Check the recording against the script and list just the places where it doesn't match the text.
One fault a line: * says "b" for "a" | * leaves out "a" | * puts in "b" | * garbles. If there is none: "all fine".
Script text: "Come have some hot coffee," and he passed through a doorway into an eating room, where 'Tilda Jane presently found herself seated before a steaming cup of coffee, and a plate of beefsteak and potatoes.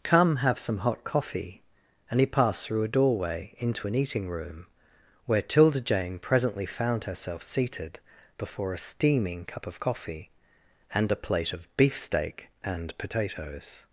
all fine